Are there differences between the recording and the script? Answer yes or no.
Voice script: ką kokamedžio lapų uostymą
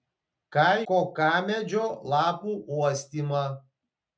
no